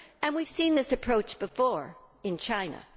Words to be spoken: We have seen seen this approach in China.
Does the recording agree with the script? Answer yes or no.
no